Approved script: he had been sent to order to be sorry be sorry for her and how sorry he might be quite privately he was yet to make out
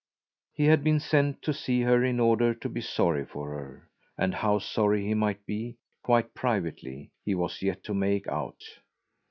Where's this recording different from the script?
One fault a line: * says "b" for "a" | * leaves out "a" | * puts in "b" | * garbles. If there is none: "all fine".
* puts in "see her in"
* leaves out "be sorry"